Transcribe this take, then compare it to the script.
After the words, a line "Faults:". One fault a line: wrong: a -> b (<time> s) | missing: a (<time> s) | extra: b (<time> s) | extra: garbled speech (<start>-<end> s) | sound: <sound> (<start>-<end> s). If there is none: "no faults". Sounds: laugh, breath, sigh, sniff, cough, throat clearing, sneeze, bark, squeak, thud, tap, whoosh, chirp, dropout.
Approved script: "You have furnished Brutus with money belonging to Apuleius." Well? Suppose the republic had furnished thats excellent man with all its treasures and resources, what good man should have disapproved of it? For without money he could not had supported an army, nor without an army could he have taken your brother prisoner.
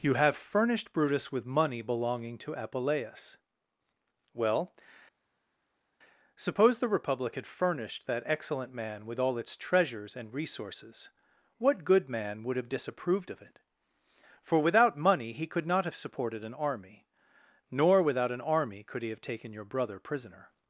"You have furnished Brutus with money belonging to Apuleius." Well? Suppose the republic had furnished that excellent man with all its treasures and resources, what good man would have disapproved of it? For without money he could not have supported an army, nor without an army could he have taken your brother prisoner.
Faults:
wrong: thats -> that (8.1 s)
wrong: should -> would (12.4 s)
wrong: had -> have (15.8 s)